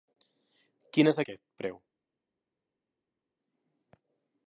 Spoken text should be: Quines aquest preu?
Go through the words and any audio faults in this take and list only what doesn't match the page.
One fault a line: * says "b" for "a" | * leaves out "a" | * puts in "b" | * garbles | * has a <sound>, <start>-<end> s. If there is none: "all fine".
all fine